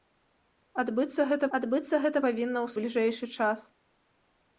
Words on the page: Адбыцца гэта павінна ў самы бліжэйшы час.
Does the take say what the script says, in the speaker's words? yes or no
no